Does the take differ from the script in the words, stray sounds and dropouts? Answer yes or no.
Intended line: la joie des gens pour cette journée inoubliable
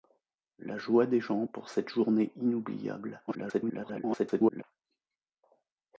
yes